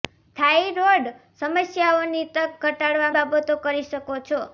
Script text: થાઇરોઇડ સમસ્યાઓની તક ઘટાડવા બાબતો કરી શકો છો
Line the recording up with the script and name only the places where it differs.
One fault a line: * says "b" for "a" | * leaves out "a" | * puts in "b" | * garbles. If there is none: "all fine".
all fine